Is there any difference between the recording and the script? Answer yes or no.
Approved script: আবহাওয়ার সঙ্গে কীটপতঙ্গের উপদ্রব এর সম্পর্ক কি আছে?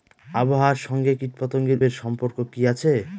yes